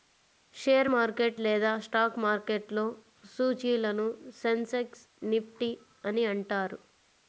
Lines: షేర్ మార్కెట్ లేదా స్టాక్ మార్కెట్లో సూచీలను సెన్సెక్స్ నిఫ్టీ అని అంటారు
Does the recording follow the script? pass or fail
pass